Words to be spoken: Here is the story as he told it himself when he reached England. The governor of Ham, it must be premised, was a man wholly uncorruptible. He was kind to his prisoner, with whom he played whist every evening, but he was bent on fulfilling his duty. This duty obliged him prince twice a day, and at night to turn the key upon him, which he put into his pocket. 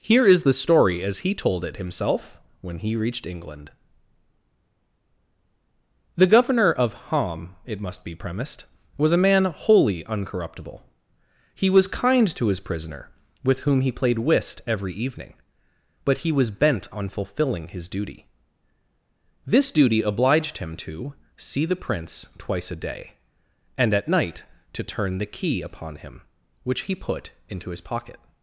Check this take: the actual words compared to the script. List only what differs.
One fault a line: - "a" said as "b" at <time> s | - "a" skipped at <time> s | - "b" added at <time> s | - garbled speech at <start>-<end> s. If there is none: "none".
- "to See the" added at 20.8 s